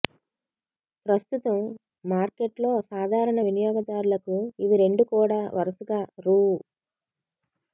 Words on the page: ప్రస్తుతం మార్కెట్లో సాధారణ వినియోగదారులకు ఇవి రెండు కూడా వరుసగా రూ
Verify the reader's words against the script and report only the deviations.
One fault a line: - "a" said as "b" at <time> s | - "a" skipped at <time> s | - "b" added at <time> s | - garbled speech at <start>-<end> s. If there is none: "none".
none